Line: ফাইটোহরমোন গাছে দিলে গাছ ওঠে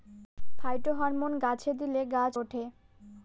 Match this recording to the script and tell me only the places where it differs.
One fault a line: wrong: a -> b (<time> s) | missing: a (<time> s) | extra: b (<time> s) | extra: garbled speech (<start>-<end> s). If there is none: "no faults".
no faults